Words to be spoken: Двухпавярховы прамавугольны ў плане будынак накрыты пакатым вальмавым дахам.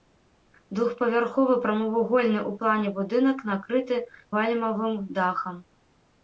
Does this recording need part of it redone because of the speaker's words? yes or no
yes